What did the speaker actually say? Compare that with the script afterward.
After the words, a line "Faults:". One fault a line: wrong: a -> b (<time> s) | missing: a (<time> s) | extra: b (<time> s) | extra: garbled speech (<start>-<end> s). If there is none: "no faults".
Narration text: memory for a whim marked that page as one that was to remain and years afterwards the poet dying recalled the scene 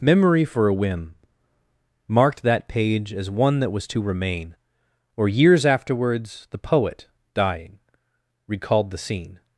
memory for a whim marked that page as one that was to remain or years afterwards the poet dying recalled the scene
Faults:
wrong: and -> or (5.2 s)